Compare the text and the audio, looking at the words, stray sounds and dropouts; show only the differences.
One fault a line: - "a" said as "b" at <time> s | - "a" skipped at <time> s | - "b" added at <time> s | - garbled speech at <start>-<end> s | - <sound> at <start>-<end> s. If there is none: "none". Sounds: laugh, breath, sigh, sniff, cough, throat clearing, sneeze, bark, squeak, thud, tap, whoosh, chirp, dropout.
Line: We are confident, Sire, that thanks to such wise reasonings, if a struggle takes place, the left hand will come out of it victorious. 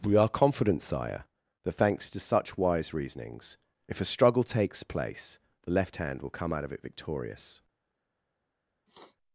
- sniff at 8.9-9.2 s